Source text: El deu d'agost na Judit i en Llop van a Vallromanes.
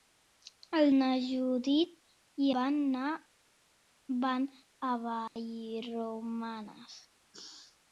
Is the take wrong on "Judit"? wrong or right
right